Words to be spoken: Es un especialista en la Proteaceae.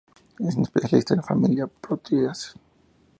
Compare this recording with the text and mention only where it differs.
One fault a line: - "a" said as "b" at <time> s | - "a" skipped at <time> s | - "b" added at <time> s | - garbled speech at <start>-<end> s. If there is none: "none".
- "familia" added at 1.2 s